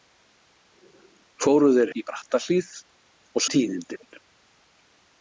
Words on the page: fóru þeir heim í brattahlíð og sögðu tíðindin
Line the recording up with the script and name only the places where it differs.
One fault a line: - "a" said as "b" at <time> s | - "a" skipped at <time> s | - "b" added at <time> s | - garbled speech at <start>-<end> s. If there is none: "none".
- "heim" skipped at 1.9 s
- "sögðu" skipped at 3.5 s